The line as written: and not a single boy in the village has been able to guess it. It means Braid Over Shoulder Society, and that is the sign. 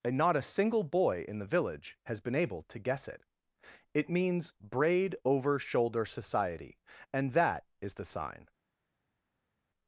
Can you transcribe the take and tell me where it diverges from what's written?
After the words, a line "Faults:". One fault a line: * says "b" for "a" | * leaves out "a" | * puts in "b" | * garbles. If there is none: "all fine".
and not a single boy in the village has been able to guess it. It means Braid Over Shoulder Society, and that is the sign.
Faults:
all fine